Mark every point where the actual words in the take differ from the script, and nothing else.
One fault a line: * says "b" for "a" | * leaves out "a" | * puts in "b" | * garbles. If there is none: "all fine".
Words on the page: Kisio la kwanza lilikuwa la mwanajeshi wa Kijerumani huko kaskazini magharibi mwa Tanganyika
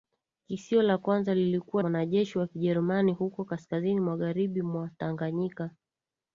* leaves out "la"